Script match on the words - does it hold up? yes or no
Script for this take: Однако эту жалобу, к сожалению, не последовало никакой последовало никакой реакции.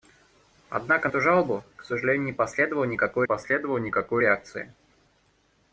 yes